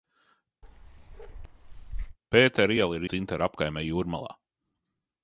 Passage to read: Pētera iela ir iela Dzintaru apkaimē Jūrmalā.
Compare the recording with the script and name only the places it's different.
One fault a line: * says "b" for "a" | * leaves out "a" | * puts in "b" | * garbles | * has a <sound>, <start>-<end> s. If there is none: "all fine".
* has a bark, 0.6-2.2 s
* leaves out "iela"